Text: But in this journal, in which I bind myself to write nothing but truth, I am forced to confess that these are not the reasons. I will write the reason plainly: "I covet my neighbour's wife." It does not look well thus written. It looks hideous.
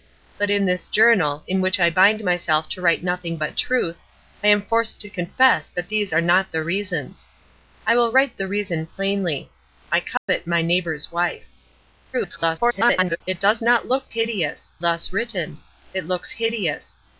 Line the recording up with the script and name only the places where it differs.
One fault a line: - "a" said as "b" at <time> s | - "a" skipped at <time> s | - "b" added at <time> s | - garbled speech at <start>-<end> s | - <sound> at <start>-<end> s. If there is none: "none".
- dropout at 10.2-10.3 s
- garbled speech at 12.1-13.2 s
- "well" said as "hideous" at 14.1 s